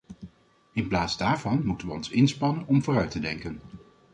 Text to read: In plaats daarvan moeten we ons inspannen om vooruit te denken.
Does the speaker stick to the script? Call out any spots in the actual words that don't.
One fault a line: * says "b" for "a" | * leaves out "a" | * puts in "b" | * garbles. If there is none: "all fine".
all fine